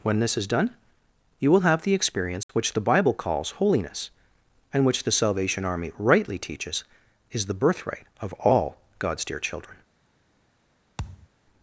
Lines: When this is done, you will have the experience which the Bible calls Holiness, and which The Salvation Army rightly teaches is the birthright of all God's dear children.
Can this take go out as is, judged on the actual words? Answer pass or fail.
pass